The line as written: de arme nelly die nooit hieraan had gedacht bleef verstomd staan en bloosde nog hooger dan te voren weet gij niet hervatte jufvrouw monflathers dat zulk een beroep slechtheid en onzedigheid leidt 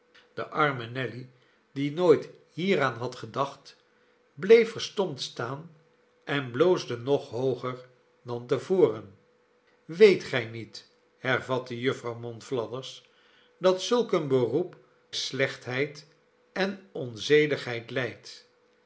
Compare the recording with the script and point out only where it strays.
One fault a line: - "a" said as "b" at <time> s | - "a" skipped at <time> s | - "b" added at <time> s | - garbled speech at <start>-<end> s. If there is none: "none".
none